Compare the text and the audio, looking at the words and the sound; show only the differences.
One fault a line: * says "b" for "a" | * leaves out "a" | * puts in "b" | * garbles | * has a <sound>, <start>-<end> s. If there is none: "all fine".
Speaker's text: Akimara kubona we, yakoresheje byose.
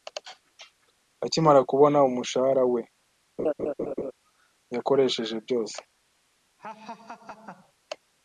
* puts in "umushahara"
* has a laugh, 3.4-4.1 s
* has a laugh, 6.6-7.7 s